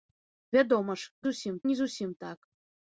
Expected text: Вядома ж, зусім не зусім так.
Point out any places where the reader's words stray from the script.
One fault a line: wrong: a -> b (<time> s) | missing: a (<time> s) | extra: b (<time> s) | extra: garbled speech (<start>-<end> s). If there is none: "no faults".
no faults